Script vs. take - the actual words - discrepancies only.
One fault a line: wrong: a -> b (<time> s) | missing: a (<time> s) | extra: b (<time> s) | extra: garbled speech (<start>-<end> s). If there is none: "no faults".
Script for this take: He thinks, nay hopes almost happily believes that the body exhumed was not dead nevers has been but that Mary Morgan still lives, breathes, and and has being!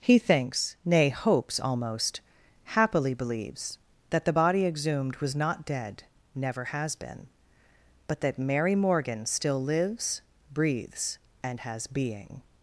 wrong: nevers -> never (6.3 s)
missing: and (11.6 s)